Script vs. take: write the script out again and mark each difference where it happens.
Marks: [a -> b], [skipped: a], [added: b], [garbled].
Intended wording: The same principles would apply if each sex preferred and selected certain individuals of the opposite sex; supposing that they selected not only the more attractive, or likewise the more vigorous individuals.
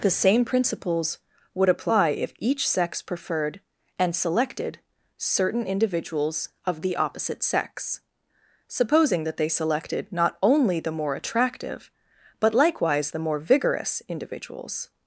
The same principles would apply if each sex preferred and selected certain individuals of the opposite sex; supposing that they selected not only the more attractive, [or -> but] likewise the more vigorous individuals.